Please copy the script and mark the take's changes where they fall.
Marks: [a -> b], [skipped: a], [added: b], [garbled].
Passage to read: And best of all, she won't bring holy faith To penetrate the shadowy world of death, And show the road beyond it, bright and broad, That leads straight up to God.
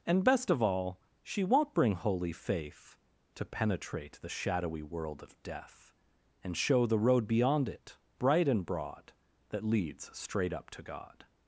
And best of all, she won't bring holy faith To penetrate the shadowy world of death, And show the road beyond it, bright and broad, That leads straight up to God.